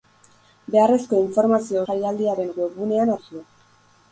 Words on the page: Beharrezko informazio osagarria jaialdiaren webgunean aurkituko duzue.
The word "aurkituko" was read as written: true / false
false